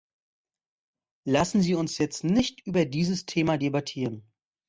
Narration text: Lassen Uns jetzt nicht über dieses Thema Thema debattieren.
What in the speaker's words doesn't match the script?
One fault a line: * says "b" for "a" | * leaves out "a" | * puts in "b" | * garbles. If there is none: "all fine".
* puts in "Sie"
* leaves out "Thema"